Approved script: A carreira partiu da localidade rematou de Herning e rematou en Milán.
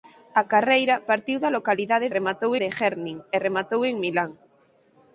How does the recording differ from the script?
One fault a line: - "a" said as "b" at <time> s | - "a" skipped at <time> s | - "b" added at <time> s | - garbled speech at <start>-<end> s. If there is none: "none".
none